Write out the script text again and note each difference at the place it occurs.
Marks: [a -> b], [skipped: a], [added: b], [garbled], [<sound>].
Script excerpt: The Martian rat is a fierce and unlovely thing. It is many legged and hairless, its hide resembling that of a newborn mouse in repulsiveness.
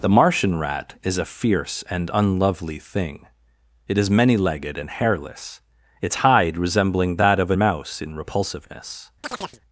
The Martian rat is a fierce and unlovely thing. It is many legged and hairless, its hide resembling that of a [skipped: newborn] mouse in repulsiveness. [chirp]